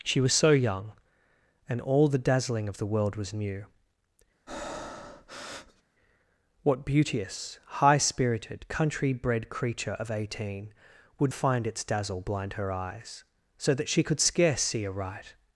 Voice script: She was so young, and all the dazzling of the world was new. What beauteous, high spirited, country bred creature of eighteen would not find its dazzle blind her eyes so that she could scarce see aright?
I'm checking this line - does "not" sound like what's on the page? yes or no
no